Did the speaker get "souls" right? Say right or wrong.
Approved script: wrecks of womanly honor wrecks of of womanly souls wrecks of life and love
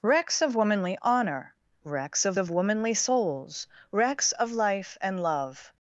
right